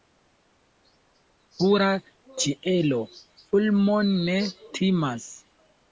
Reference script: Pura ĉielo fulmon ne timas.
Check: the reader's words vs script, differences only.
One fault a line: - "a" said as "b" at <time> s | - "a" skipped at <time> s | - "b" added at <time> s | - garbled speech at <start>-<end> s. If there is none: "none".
none